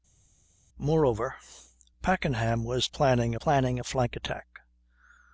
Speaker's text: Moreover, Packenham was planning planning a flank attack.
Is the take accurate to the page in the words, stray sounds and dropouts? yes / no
yes